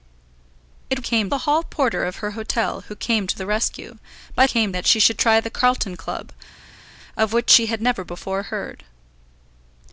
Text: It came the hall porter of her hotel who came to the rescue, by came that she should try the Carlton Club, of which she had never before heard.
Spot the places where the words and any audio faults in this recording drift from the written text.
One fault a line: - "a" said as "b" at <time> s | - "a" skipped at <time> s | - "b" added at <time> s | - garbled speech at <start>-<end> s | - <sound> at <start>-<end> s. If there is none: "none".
none